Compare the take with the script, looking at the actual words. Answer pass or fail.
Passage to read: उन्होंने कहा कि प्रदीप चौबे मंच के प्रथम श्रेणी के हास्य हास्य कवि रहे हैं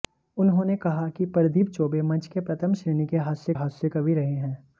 pass